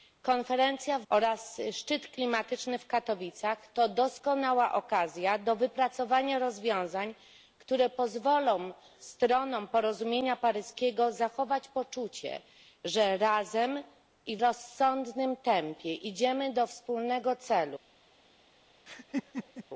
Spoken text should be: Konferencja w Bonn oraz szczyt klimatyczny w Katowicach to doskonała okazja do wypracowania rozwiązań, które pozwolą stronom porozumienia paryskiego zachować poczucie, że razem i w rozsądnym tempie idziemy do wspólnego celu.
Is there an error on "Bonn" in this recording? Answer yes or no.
yes